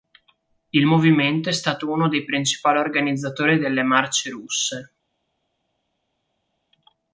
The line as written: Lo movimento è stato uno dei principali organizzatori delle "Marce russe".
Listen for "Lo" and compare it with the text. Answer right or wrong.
wrong